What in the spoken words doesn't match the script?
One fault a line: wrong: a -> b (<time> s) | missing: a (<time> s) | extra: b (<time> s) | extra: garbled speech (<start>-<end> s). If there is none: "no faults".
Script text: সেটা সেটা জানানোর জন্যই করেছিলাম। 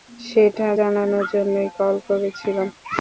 missing: সেটা (0.7 s)
extra: কল (1.8 s)